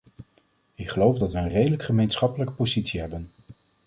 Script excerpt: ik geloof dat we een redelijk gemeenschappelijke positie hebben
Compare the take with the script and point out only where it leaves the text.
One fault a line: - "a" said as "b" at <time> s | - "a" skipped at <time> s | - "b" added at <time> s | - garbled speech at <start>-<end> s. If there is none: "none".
none